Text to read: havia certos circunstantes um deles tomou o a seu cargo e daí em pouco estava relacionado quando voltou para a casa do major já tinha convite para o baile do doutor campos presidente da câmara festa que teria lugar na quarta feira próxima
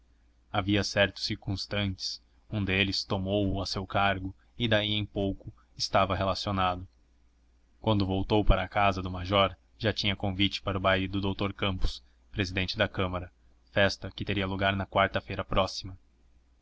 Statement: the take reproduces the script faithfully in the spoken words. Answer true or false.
true